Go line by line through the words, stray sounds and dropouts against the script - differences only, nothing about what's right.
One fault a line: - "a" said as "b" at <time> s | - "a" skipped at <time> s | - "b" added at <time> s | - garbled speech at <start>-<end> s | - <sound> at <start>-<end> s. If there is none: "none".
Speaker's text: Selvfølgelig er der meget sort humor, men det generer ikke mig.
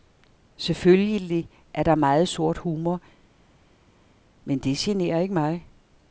none